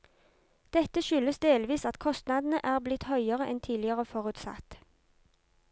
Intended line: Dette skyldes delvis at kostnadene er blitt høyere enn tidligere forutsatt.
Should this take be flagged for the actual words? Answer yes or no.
no